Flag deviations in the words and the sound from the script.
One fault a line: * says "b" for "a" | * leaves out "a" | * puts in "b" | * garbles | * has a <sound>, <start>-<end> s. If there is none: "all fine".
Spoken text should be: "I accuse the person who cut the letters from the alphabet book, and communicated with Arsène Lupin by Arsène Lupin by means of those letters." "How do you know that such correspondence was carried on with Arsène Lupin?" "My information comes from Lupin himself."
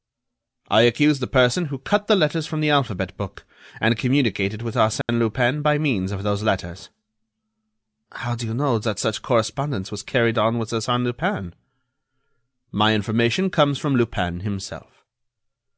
* has a dropout, 5.0-5.1 s
* leaves out "Arsène Lupin by"